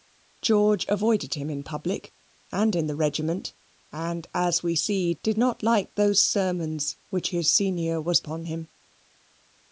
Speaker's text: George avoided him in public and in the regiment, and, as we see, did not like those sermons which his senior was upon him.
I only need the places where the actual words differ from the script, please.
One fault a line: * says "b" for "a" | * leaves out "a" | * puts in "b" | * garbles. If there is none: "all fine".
all fine